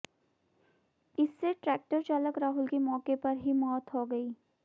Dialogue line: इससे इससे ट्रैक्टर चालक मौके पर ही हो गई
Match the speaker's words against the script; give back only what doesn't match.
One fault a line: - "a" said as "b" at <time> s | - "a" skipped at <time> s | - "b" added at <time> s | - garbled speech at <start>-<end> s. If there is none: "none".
- "इससे" skipped at 1.5 s
- "राहुल की" added at 2.4 s
- "मौत" added at 3.5 s